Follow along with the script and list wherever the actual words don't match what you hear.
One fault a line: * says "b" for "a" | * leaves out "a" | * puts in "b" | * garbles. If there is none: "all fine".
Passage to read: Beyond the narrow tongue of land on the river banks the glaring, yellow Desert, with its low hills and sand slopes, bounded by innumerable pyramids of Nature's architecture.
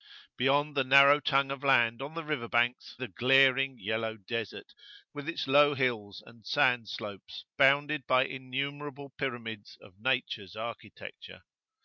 all fine